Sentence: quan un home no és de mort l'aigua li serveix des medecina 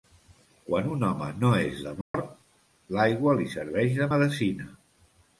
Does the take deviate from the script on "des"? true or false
true